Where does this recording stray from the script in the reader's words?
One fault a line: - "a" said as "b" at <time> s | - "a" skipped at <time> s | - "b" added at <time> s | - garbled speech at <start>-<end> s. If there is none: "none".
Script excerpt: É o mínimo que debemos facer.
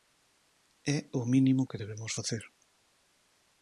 none